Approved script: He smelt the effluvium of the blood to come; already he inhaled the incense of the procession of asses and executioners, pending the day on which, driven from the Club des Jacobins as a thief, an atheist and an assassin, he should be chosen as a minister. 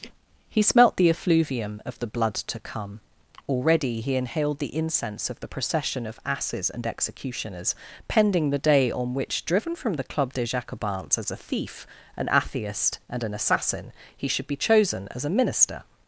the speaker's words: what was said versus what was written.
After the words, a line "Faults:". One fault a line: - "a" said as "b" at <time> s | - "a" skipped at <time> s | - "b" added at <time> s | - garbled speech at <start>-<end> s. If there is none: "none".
He smelt the effluvium of the blood to come; already he inhaled the incense of the procession of asses and executioners, pending the day on which, driven from the Club des Jacobins as a thief, an atheist and an assassin, he should be chosen as a minister.
Faults:
none